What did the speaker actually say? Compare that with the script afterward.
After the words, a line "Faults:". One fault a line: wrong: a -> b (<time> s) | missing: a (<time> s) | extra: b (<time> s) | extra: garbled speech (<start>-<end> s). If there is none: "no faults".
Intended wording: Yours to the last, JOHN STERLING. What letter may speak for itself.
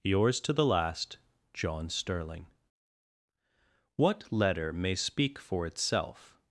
Yours to the last, JOHN STERLING. What letter may speak for itself.
Faults:
no faults